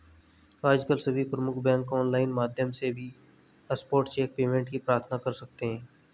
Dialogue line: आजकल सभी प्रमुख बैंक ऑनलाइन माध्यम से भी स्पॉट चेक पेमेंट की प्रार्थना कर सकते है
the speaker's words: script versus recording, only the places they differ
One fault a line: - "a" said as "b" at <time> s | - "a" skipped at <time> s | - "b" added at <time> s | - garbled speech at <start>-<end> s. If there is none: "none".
none